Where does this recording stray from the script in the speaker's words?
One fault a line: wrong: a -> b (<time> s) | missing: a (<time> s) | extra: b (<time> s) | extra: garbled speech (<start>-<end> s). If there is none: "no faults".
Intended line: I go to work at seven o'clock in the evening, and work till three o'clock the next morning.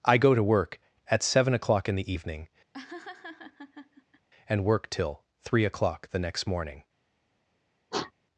no faults